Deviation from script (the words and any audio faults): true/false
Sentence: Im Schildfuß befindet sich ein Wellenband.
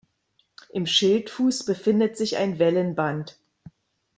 false